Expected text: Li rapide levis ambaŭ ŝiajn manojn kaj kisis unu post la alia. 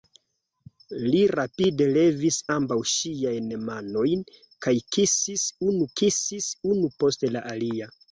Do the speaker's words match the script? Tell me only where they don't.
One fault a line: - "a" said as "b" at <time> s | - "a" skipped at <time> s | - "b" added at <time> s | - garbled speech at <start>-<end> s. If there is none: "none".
- "kisis unu" added at 6.0 s